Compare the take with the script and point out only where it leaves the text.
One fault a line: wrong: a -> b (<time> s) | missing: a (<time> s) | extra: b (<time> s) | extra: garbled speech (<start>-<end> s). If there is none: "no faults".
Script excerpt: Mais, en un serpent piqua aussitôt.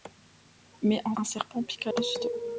no faults